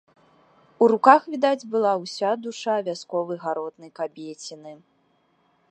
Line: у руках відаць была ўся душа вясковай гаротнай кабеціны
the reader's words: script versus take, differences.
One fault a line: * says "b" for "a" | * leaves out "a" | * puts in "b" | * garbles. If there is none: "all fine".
all fine